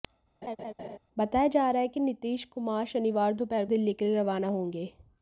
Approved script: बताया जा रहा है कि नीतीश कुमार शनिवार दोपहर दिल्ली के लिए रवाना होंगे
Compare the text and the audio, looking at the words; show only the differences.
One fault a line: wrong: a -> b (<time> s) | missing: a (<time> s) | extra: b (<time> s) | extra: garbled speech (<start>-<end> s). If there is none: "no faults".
no faults